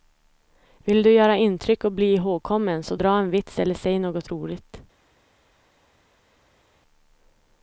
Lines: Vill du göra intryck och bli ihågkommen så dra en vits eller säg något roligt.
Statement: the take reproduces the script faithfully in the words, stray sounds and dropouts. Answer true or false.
true